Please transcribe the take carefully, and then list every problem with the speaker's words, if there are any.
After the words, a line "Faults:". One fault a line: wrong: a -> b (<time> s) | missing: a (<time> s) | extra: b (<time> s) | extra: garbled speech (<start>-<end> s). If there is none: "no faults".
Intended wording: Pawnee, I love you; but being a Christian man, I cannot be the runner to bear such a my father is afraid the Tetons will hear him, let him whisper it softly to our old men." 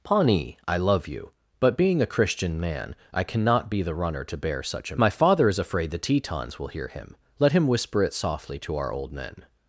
Pawnee, I love you; but being a Christian man, I cannot be the runner to bear such a my father is afraid the Tetons will hear him, let him whisper it softly to our old men."
Faults:
no faults